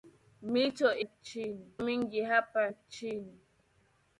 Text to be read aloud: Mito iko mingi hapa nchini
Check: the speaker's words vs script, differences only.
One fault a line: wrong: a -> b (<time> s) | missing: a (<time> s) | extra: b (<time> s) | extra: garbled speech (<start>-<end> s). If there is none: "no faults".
wrong: iko -> nchini (1.0 s)